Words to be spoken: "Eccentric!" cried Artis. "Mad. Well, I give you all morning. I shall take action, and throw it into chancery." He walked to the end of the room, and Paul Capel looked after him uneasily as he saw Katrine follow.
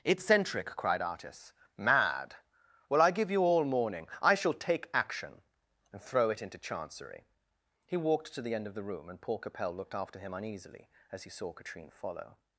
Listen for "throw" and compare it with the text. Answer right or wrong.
right